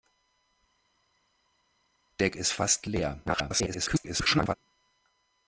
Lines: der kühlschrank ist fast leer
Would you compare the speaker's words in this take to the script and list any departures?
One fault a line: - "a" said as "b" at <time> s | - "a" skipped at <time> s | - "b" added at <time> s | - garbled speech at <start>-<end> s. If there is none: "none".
- "kühlschrank" skipped at 2.3 s
- garbled speech at 3.3-4.5 s